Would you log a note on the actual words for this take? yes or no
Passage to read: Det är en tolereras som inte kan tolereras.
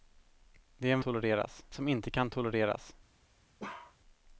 no